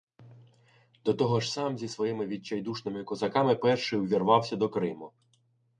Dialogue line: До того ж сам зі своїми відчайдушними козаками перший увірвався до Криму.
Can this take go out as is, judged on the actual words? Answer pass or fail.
pass